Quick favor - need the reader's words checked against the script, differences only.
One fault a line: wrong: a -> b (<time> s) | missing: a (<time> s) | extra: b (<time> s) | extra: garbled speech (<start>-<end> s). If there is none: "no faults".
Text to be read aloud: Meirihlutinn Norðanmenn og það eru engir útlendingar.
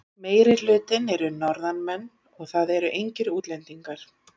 extra: eru (1.2 s)